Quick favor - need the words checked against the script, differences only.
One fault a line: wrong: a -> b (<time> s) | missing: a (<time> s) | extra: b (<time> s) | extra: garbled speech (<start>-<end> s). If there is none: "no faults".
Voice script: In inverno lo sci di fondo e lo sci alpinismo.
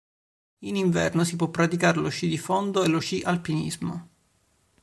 extra: si può praticare (1.2 s)